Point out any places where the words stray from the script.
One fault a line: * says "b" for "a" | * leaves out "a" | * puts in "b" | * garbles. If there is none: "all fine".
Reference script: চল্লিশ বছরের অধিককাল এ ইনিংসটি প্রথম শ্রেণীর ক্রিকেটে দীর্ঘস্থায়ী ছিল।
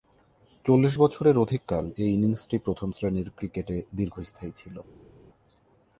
all fine